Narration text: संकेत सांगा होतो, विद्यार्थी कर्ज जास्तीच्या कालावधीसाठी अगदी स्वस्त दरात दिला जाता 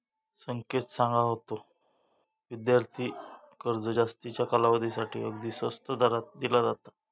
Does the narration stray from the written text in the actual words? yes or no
no